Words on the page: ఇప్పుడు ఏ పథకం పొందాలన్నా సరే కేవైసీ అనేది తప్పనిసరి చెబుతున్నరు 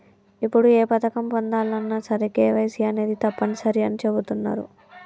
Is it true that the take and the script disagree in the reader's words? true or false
true